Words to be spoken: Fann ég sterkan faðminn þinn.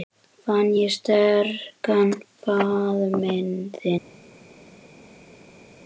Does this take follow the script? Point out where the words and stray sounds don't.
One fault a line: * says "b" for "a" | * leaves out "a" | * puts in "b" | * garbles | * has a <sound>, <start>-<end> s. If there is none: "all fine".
all fine